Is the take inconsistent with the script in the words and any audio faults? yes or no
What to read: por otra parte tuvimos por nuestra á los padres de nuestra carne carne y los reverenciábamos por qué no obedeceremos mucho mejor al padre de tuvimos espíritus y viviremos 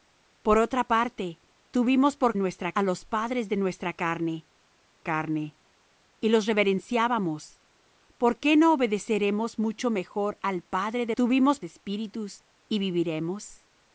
no